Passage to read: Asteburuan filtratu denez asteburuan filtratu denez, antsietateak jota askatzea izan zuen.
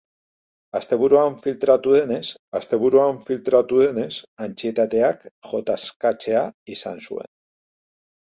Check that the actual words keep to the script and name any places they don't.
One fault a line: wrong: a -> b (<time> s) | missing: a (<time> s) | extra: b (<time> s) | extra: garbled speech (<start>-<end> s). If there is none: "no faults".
no faults